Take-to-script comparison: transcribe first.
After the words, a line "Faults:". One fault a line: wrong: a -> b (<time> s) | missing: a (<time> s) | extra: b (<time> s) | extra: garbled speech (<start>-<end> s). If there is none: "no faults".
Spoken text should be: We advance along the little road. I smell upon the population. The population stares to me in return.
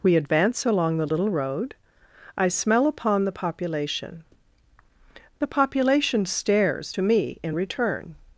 We advance along the little road. I smell upon the population. The population stares to me in return.
Faults:
no faults